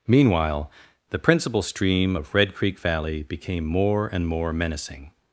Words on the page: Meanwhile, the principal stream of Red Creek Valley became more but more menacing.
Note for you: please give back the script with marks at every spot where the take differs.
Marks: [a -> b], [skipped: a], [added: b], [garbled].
Meanwhile, the principal stream of Red Creek Valley became more [but -> and] more menacing.